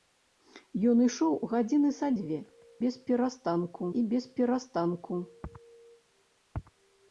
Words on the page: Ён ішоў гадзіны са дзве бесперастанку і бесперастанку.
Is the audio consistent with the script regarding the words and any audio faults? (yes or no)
yes